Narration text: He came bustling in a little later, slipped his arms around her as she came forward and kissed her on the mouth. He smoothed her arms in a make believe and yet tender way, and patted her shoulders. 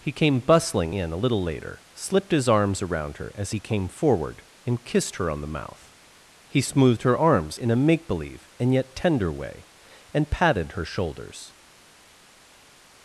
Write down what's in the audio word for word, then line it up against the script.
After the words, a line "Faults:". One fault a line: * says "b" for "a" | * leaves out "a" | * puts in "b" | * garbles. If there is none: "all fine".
He came bustling in a little later, slipped his arms around her as he came forward and kissed her on the mouth. He smoothed her arms in a make believe and yet tender way, and patted her shoulders.
Faults:
* says "he" for "she"